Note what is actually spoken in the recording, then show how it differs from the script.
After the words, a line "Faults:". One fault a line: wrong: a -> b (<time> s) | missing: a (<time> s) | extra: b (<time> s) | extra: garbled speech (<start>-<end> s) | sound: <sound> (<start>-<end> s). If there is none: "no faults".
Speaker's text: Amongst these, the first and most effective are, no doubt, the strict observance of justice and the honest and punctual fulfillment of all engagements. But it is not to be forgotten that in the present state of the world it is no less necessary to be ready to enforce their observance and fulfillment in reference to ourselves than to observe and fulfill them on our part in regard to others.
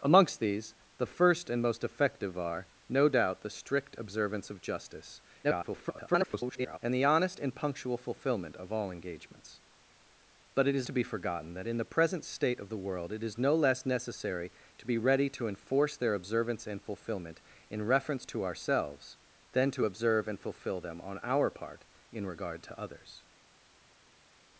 Amongst these, the first and most effective are, no doubt, the strict observance of justice [garbled] and the honest and punctual fulfillment of all engagements. But it is to be forgotten that in the present state of the world it is no less necessary to be ready to enforce their observance and fulfillment in reference to ourselves than to observe and fulfill them on our part in regard to others.
Faults:
extra: garbled speech (5.4-6.8 s)
missing: not (10.9 s)